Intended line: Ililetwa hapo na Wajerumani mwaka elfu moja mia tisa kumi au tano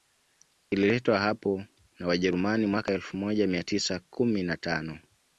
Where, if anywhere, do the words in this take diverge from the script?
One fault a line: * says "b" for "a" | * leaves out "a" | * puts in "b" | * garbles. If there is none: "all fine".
* says "na" for "au"